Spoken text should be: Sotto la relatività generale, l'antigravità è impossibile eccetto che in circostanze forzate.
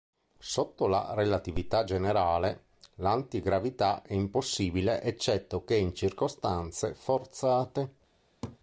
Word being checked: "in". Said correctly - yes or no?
yes